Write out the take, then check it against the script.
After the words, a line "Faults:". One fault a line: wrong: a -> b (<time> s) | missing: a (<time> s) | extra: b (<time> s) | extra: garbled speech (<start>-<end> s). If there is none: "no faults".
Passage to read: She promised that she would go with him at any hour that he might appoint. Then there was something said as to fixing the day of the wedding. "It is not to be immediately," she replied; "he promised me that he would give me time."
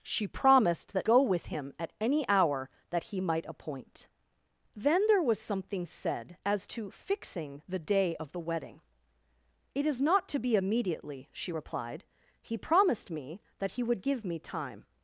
She promised that go with him at any hour that he might appoint. Then there was something said as to fixing the day of the wedding. "It is not to be immediately," she replied; "he promised me that he would give me time."
Faults:
missing: she would (1.1 s)